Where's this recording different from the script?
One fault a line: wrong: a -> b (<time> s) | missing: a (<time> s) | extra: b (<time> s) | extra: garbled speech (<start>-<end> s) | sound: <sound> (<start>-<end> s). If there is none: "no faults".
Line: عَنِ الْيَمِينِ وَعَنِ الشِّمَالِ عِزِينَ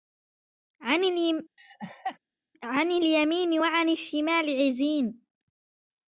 sound: laugh (1.6-2.2 s)